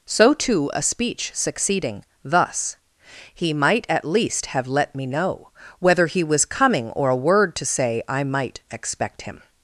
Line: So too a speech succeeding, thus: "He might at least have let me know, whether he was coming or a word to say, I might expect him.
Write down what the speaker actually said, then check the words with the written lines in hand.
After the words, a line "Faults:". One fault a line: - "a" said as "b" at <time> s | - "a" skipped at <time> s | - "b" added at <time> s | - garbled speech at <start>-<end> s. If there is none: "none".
So too a speech succeeding, thus: "He might at least have let me know, whether he was coming or a word to say, I might expect him.
Faults:
none